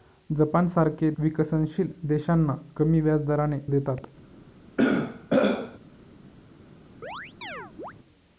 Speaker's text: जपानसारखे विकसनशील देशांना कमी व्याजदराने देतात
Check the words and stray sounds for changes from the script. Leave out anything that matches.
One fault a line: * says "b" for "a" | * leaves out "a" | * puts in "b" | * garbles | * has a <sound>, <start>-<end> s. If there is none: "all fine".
* has a throat clearing, 4.8-5.8 s
* has a chirp, 7.0-7.9 s